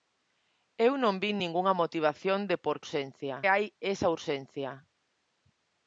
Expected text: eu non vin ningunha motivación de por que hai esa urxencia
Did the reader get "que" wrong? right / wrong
wrong